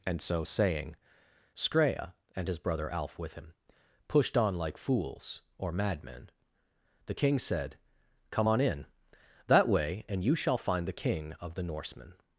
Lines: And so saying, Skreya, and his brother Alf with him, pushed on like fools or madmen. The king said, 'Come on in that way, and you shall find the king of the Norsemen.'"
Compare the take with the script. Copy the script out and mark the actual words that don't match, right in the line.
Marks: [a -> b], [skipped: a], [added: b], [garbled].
And so saying, Skreya, and his brother Alf with him, pushed on like fools or madmen. The king said, 'Come on in that way, and you shall find the king of the Norsemen.'"